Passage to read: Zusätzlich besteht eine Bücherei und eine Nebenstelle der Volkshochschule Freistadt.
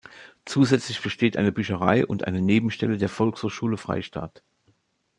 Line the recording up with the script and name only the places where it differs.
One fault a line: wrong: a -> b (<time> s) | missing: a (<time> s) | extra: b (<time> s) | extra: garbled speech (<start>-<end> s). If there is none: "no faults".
no faults